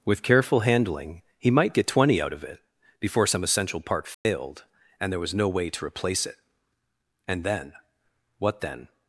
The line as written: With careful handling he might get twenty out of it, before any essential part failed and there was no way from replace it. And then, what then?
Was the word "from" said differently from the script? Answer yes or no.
yes